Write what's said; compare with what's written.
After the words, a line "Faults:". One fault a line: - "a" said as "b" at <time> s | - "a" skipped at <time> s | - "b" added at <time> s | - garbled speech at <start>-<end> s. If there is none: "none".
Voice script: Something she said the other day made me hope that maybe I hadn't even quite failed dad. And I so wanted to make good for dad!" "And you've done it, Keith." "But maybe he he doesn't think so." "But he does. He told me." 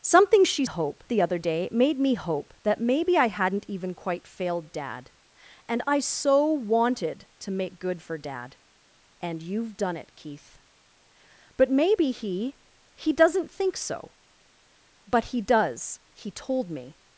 Something she hope the other day made me hope that maybe I hadn't even quite failed dad. And I so wanted to make good for dad!" "And you've done it, Keith." "But maybe he he doesn't think so." "But he does. He told me."
Faults:
- "said" said as "hope" at 0.6 s